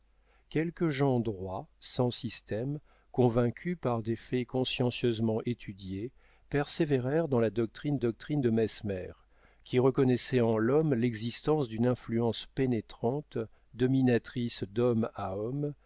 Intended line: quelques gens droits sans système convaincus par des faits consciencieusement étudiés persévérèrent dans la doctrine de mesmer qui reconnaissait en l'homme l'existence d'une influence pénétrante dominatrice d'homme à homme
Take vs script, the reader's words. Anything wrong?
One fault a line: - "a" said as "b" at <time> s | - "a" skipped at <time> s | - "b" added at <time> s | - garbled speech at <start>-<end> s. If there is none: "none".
- "doctrine" added at 8.0 s